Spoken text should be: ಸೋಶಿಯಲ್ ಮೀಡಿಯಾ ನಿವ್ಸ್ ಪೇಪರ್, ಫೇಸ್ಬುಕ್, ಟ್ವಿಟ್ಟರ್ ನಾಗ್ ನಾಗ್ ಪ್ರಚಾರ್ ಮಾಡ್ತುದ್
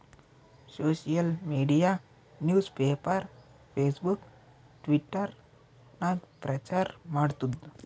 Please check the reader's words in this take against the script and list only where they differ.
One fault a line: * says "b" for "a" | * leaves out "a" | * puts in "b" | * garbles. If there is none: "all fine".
* leaves out "ನಾಗ್"